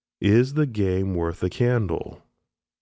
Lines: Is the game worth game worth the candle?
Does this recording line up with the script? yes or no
no